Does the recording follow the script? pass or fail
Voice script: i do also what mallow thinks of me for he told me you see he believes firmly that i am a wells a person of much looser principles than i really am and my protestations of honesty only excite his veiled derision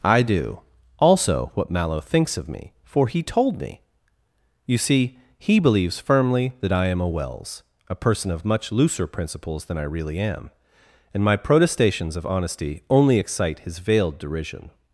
pass